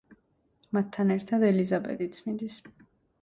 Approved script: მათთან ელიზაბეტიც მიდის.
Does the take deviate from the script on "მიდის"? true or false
false